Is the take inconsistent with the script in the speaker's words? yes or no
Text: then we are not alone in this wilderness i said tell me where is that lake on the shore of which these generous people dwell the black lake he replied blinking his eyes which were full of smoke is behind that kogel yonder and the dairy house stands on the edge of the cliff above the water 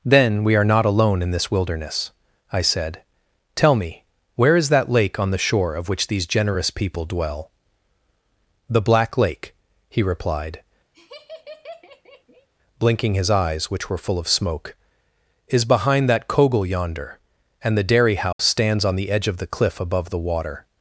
no